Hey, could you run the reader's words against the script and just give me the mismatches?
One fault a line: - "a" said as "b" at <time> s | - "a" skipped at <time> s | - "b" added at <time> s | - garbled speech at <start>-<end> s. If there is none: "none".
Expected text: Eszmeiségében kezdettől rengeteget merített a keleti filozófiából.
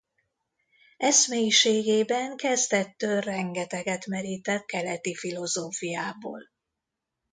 - "a" skipped at 4.7 s